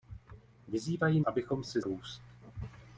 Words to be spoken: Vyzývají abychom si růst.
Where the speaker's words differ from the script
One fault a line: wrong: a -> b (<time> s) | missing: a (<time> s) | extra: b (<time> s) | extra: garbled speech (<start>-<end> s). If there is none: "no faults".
no faults